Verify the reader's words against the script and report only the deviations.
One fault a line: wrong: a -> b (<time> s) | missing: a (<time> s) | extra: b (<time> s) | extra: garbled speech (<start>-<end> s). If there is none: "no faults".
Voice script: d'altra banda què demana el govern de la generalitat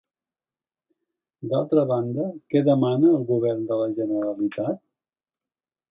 no faults